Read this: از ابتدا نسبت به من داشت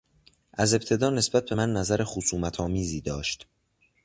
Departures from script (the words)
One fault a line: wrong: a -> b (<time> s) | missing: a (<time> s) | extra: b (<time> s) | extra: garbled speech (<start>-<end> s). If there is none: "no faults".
extra: نظر خصومتآمیزی (1.7 s)